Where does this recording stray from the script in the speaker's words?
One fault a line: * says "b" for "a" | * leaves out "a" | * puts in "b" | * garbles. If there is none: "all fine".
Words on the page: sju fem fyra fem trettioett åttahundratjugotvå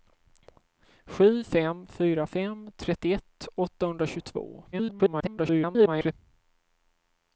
* garbles